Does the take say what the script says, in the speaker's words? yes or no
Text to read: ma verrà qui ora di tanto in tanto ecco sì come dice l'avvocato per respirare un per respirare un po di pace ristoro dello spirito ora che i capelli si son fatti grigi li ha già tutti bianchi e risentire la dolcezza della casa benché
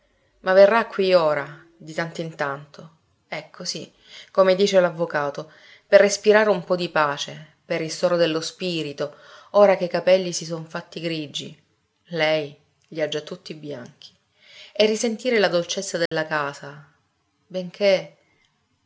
no